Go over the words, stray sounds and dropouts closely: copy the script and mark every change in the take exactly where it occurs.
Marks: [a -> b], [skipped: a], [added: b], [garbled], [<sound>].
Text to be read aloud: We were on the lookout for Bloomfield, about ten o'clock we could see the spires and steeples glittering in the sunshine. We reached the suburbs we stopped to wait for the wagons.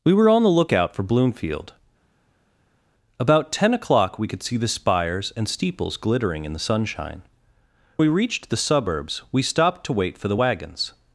We were on the lookout for Bloomfield, about ten o'clock we could see the spires and steeples glittering in the sunshine. We reached the suburbs we stopped to wait for the wagons.